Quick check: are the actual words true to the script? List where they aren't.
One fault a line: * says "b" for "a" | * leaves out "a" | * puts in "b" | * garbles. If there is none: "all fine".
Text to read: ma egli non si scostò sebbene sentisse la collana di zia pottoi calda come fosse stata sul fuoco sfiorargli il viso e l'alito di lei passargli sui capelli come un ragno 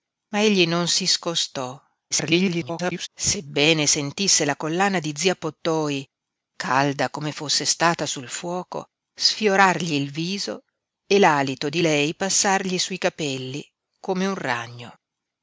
* garbles